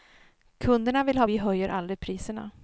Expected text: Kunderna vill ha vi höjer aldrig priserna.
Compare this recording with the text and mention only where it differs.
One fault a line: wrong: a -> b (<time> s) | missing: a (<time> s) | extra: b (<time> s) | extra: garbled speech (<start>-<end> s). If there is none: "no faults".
no faults